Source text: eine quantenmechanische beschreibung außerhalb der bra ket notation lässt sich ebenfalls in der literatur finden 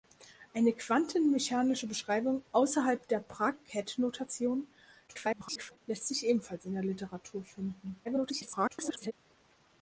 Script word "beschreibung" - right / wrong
right